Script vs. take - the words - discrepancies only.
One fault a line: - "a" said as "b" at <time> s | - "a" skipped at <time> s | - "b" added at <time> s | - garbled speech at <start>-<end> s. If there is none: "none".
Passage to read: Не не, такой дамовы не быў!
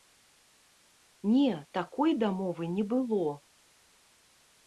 - "не" skipped at 1.5 s
- "быў" said as "было" at 2.9 s